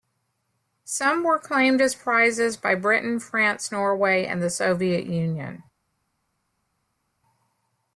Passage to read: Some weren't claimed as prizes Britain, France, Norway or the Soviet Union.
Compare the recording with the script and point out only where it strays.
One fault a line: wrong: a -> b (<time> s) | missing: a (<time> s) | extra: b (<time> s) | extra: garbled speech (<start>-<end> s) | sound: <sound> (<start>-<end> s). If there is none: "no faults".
wrong: weren't -> were (1.2 s)
extra: by (2.6 s)
wrong: or -> and (4.2 s)